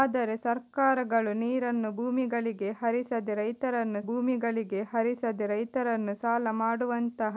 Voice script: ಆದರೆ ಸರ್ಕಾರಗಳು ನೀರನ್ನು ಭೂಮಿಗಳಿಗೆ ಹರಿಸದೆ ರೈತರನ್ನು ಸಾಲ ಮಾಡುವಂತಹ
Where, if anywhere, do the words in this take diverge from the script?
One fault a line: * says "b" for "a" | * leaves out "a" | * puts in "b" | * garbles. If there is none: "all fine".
* puts in "ಭೂಮಿಗಳಿಗೆ ಹರಿಸದೆ ರೈತರನ್ನು"